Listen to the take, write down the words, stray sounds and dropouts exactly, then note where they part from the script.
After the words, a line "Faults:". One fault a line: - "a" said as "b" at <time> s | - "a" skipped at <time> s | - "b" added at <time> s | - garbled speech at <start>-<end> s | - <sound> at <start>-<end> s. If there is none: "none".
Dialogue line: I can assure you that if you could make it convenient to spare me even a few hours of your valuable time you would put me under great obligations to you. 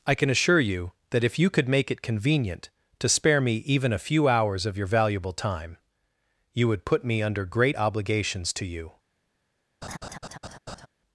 I can assure you that if you could make it convenient to spare me even a few hours of your valuable time you would put me under great obligations to you.
Faults:
- laugh at 9.8-10.9 s